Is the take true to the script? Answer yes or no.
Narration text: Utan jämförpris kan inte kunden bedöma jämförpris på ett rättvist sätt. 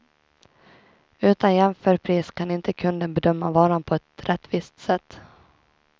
no